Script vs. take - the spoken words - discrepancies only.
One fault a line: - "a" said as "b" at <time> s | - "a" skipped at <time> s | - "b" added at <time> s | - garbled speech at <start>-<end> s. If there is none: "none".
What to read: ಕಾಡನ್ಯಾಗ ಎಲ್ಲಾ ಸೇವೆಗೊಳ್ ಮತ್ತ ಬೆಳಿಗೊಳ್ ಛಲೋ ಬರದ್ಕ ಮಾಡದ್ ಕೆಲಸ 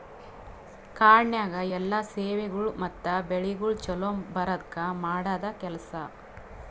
none